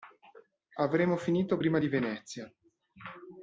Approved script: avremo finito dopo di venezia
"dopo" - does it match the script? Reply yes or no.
no